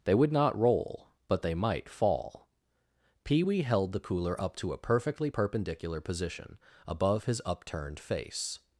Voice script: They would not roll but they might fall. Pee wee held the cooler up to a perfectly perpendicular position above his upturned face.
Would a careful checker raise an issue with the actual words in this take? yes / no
no